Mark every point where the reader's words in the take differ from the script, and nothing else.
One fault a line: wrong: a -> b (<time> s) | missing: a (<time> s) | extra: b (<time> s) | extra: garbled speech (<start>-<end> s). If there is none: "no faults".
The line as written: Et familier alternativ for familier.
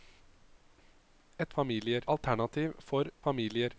no faults